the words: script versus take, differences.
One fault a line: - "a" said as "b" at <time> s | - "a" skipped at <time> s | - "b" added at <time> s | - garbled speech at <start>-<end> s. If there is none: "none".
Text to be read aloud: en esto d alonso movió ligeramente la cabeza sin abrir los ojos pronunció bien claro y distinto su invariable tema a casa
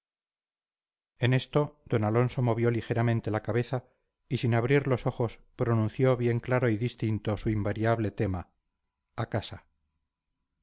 - "y" added at 4.3 s